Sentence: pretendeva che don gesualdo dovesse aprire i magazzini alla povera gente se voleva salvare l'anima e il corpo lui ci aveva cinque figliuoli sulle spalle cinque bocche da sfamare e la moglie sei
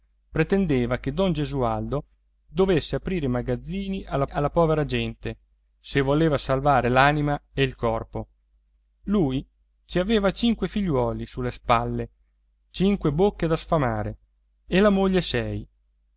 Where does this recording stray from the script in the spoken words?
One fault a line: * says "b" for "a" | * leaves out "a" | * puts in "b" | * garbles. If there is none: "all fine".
* puts in "alla"